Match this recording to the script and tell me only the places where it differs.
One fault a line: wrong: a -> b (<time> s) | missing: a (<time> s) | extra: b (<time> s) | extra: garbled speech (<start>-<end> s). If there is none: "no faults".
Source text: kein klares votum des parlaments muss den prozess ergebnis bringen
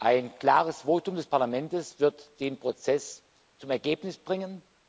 wrong: kein -> ein (0.0 s)
wrong: muss -> wird (2.0 s)
extra: zum (3.6 s)